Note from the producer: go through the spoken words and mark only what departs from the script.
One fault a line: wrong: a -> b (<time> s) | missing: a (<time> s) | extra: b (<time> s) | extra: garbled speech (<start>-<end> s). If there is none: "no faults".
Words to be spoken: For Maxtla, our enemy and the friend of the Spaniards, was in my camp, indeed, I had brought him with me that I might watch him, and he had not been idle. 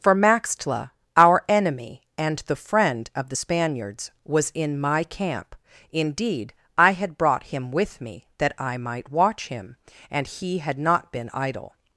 no faults